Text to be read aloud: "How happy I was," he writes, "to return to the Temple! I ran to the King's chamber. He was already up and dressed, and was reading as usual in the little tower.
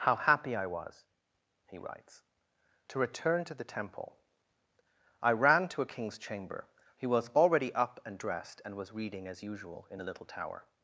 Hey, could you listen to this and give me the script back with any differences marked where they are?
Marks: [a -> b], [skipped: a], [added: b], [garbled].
"How happy I was," he writes, "to return to the Temple! I ran to [the -> a] King's chamber. He was already up and dressed, and was reading as usual in the little tower.